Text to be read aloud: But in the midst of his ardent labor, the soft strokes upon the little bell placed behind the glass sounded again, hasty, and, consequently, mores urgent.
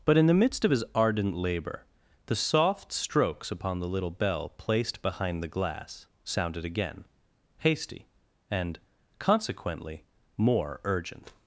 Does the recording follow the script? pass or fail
fail